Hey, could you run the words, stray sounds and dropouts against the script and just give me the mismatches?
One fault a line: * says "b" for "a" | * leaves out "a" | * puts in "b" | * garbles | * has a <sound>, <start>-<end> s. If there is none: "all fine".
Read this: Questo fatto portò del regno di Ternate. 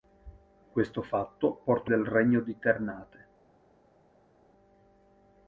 all fine